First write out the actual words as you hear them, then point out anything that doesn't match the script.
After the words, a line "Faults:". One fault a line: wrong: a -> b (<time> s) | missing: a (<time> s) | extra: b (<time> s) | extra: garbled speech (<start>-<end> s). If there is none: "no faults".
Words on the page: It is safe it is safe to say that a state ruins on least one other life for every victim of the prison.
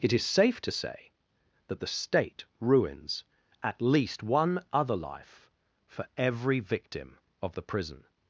It is safe to say that the state ruins at least one other life for every victim of the prison.
Faults:
missing: it is safe (0.6 s)
wrong: a -> the (1.8 s)
wrong: on -> at (3.6 s)